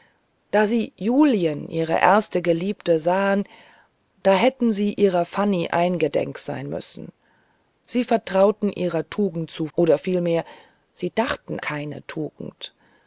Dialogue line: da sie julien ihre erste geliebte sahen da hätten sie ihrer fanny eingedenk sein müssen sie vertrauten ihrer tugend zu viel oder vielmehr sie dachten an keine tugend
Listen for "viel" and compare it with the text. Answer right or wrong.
wrong